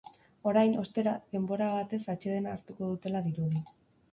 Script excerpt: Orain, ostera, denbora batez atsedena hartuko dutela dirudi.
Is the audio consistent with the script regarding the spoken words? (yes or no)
yes